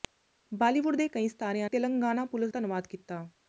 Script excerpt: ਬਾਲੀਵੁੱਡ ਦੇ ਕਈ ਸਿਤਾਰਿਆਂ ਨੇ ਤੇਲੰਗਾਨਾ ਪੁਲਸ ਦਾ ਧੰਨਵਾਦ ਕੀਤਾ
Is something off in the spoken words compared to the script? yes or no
yes